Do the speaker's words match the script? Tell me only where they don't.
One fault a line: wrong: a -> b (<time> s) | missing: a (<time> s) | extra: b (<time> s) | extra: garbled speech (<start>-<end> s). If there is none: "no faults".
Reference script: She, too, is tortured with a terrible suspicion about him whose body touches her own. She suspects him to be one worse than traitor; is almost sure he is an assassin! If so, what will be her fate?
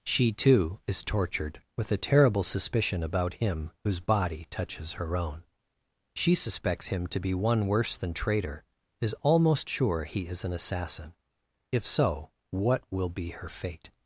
no faults